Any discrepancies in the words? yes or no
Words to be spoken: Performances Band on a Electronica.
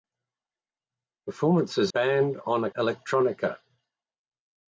no